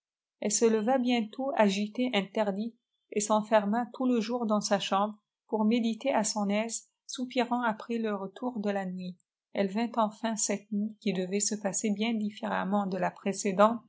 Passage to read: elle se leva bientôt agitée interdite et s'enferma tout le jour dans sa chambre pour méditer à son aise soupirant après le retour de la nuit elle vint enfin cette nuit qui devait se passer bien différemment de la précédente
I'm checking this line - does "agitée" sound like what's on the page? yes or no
yes